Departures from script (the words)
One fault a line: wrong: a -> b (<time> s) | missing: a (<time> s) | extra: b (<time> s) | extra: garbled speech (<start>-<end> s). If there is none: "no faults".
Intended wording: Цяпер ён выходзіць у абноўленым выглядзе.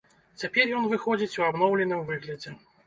no faults